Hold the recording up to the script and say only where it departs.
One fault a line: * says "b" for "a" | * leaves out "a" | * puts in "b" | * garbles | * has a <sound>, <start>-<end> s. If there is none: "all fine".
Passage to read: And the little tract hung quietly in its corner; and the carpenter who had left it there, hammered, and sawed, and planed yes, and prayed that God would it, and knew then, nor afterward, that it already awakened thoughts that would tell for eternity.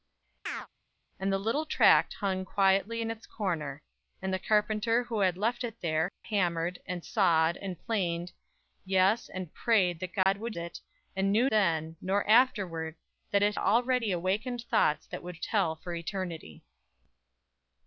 * has a chirp, 0.5-0.7 s
* has a dropout, 10.2-10.3 s